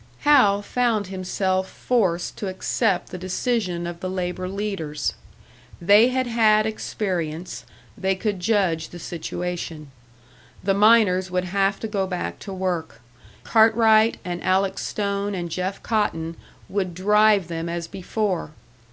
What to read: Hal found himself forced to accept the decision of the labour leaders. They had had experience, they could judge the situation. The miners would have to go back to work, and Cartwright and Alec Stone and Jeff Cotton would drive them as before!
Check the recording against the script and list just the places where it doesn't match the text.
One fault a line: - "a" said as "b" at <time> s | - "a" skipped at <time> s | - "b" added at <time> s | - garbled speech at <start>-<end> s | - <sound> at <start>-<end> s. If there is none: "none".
- "and" skipped at 13.0 s